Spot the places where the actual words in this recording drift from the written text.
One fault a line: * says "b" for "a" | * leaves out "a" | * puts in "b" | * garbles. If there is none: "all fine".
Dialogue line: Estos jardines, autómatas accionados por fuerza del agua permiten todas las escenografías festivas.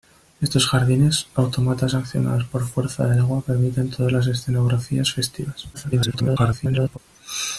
* garbles